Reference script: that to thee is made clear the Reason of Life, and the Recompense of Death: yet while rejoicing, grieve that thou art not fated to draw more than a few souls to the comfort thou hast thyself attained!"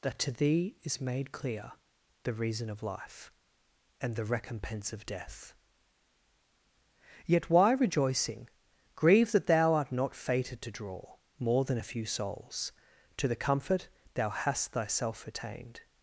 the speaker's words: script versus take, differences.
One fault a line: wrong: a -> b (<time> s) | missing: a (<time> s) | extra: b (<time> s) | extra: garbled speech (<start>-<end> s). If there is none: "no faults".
wrong: while -> why (7.5 s)